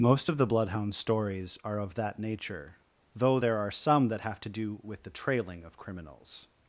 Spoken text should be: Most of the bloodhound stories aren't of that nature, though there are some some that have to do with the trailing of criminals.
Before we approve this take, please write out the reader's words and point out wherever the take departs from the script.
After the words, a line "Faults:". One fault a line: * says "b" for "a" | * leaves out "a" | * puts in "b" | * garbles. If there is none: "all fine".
Most of the bloodhound stories are of that nature, though there are some that have to do with the trailing of criminals.
Faults:
* says "are" for "aren't"
* leaves out "some"